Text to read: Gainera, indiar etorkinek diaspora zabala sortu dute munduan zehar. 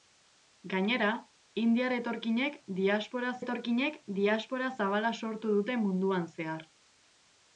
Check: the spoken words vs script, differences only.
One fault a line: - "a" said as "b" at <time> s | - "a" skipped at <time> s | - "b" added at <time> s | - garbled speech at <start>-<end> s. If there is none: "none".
- "etorkinek diaspora" added at 3.4 s